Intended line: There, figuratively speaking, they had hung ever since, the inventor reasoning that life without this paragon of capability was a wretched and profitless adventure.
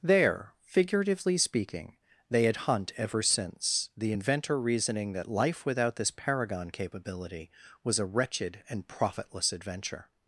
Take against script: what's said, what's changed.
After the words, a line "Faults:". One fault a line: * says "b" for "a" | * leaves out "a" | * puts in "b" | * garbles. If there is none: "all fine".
There, figuratively speaking, they had hunt ever since, the inventor reasoning that life without this paragon capability was a wretched and profitless adventure.
Faults:
* says "hunt" for "hung"
* leaves out "of"